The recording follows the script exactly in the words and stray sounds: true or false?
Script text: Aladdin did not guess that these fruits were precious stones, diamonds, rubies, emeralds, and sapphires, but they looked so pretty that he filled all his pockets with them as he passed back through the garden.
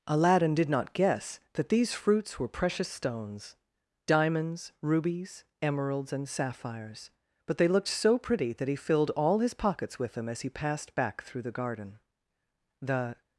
false